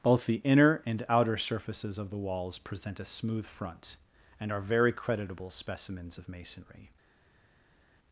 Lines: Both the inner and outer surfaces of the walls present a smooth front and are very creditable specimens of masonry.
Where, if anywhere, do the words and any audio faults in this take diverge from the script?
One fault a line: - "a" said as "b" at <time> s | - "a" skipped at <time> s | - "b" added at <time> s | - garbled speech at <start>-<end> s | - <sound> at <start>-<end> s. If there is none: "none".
none